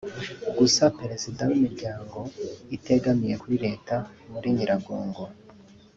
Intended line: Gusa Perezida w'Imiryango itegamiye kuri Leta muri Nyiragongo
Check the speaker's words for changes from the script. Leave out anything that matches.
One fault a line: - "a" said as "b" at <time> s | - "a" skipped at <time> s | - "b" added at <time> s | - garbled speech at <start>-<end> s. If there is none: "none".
none